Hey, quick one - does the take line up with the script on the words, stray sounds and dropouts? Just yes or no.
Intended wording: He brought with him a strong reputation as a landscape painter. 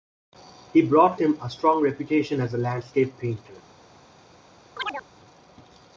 no